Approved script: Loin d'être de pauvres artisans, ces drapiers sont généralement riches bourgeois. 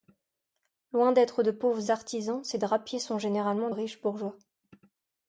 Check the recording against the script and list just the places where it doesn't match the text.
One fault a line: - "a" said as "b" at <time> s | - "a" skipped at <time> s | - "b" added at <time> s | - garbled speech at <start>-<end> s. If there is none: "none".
none